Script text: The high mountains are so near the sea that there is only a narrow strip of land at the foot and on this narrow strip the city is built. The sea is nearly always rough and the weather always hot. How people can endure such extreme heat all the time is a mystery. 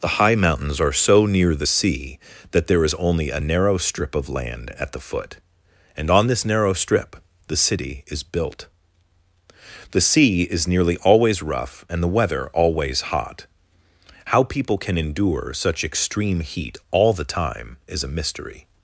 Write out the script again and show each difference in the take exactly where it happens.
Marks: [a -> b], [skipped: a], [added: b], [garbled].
The high mountains are so near the sea that there is only a narrow strip of land at the foot and on this narrow strip the city is built. The sea is nearly always rough and the weather always hot. How people can endure such extreme heat all the time is a mystery.